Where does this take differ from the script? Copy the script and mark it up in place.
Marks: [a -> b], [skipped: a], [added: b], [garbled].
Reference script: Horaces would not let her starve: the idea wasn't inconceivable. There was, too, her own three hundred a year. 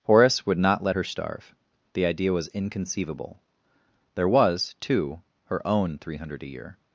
[Horaces -> Horace] would not let her starve: the idea [wasn't -> was] inconceivable. There was, too, her own three hundred a year.